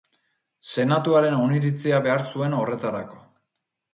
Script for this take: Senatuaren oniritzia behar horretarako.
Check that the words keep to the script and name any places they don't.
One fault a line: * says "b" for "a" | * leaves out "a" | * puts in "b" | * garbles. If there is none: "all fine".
* puts in "zuen"